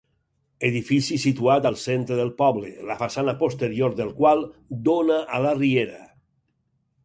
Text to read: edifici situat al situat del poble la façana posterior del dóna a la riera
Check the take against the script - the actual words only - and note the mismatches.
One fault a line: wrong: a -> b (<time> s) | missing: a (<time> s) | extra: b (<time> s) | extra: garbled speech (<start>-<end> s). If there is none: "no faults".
wrong: situat -> centre (1.8 s)
extra: qual (4.2 s)